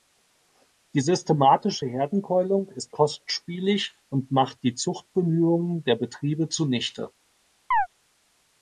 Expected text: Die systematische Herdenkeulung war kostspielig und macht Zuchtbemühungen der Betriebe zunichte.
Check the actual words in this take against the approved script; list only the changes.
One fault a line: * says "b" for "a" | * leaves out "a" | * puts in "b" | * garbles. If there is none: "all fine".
* says "ist" for "war"
* puts in "die"